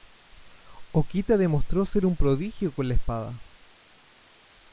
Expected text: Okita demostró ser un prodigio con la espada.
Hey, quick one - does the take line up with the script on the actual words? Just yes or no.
yes